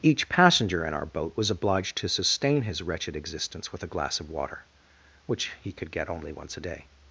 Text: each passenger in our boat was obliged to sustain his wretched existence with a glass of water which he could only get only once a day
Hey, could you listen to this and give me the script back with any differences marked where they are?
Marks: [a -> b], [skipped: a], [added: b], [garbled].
each passenger in our boat was obliged to sustain his wretched existence with a glass of water which he could [skipped: only] get only once a day